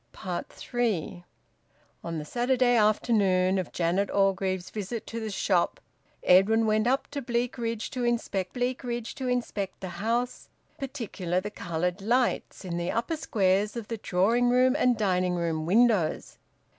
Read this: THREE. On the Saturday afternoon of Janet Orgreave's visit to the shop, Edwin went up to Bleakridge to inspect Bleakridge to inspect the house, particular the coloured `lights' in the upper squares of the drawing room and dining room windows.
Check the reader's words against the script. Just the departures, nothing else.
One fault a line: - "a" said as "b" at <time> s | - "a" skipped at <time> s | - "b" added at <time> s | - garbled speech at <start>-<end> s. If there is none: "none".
none